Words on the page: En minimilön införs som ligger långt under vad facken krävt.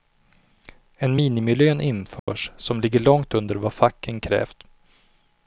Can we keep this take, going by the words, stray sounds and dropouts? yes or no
no